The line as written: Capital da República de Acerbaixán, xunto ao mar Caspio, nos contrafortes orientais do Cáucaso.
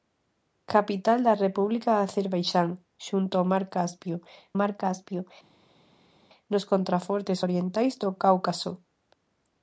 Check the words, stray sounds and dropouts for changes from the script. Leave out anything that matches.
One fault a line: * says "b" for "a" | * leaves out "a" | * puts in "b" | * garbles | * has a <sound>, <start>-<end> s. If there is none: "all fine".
* puts in "mar Caspio"